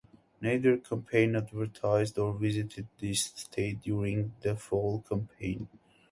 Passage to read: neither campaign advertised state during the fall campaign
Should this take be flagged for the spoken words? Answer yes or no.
yes